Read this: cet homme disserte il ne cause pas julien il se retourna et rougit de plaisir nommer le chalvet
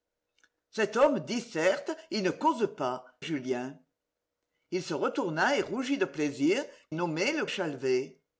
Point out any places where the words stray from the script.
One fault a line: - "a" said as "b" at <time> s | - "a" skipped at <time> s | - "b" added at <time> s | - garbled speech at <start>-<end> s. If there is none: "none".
none